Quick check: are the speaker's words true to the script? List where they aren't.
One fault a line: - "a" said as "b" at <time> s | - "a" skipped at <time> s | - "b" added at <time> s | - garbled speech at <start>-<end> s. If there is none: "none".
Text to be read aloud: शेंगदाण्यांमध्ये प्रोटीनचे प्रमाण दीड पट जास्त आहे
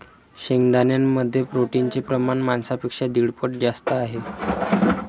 - "मांसापेक्षा" added at 2.4 s